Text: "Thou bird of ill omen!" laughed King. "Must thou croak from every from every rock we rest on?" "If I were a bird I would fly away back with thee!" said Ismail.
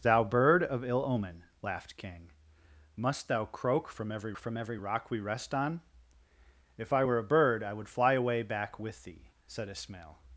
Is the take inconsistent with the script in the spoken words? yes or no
no